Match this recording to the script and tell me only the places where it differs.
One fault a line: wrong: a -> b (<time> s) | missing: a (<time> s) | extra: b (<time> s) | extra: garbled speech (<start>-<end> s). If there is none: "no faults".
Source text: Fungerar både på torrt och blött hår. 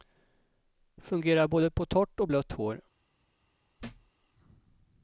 no faults